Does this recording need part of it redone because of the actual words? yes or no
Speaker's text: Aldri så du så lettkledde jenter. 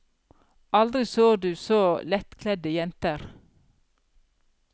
no